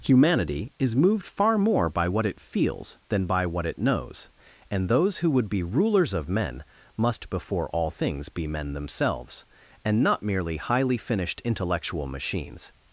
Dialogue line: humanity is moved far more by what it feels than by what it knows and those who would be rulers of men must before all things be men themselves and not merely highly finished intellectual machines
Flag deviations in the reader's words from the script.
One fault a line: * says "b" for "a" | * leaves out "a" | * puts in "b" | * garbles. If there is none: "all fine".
all fine